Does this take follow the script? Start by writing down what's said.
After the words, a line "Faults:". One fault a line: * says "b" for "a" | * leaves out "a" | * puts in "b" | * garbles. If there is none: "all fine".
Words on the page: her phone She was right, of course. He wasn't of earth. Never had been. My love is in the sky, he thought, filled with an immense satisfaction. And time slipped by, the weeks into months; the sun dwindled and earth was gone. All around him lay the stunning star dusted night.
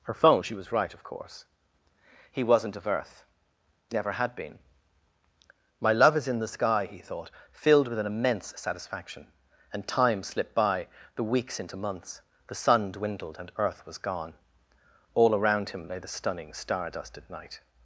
her phone She was right, of course. He wasn't of earth. Never had been. My love is in the sky, he thought, filled with an immense satisfaction. And time slipped by, the weeks into months; the sun dwindled and earth was gone. All around him lay the stunning star dusted night.
Faults:
all fine